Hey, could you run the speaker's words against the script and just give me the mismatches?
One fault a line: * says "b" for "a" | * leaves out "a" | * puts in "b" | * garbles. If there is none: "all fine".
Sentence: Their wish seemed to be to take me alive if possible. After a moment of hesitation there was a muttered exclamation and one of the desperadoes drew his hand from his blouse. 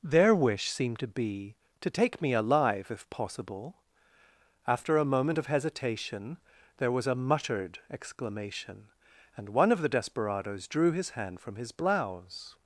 all fine